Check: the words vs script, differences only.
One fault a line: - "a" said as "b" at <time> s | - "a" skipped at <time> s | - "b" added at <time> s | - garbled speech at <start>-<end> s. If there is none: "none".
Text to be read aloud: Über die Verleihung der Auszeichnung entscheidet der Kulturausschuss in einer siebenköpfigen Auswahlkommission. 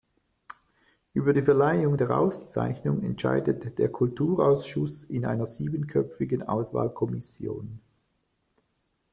none